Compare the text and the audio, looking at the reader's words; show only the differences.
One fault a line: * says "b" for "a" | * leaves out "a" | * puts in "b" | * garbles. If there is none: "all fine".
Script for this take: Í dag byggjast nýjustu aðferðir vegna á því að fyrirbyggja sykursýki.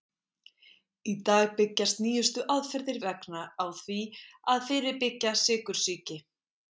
all fine